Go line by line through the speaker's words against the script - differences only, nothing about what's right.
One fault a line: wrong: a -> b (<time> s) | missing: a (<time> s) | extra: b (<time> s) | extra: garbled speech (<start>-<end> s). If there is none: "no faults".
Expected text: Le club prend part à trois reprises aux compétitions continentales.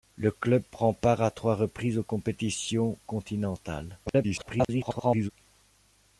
extra: garbled speech (4.1-5.3 s)